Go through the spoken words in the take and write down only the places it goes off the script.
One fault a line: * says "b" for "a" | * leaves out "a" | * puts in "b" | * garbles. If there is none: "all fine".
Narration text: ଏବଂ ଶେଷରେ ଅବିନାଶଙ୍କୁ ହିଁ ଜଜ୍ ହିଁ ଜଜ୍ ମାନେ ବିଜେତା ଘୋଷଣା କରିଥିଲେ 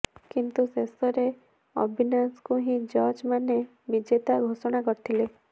* says "କିନ୍ତୁ" for "ଏବଂ"
* leaves out "ହିଁ ଜଜ୍"